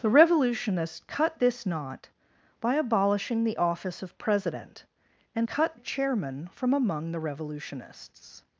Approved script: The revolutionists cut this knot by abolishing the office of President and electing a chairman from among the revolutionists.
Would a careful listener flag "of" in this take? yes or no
no